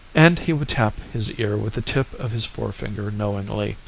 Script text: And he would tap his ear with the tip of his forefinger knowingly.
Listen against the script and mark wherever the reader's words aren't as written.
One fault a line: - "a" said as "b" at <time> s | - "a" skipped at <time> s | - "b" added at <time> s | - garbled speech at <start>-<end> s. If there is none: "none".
none